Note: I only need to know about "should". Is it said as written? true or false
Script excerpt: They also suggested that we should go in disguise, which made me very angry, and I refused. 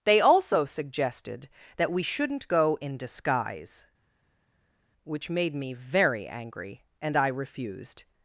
false